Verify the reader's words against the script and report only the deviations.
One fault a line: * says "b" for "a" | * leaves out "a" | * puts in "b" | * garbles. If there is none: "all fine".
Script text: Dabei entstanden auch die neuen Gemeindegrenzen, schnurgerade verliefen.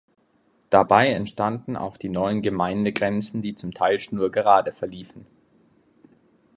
* puts in "die zum Teil"